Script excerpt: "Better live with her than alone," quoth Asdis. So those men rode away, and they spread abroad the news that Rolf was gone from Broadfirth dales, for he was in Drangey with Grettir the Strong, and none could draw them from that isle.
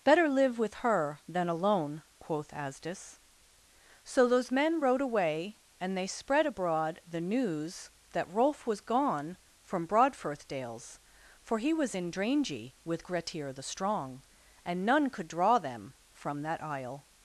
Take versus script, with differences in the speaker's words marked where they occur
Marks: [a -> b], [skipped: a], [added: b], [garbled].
"Better live with her than alone," quoth Asdis. So those men rode away, and they spread abroad the news that Rolf was gone from Broadfirth dales, for he was in Drangey with Grettir the Strong, and none could draw them from that isle.